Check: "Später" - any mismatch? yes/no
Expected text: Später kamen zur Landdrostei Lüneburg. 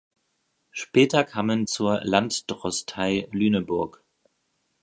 no